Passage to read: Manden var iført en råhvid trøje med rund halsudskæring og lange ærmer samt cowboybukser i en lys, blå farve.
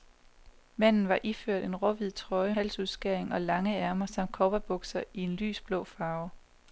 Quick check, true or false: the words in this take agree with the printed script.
false